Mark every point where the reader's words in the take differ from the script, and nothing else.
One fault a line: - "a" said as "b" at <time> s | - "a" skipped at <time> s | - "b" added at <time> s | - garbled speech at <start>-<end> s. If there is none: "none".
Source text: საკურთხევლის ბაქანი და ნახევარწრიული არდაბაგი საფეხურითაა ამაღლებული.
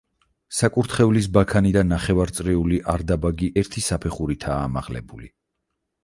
- "ერთი" added at 3.6 s